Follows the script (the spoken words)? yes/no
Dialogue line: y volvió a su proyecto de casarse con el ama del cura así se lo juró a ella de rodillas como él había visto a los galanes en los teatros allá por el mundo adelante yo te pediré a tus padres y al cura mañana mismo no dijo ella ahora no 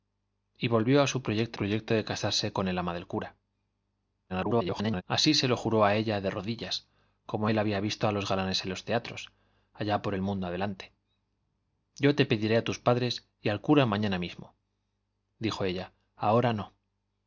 no